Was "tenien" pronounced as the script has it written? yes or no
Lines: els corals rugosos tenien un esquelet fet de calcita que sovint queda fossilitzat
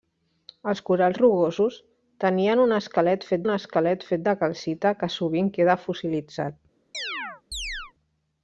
yes